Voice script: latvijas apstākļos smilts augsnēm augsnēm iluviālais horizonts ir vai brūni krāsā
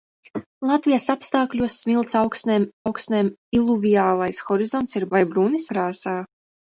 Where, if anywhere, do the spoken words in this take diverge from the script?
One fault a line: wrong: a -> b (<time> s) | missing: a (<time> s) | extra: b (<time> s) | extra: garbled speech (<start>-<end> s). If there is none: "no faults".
no faults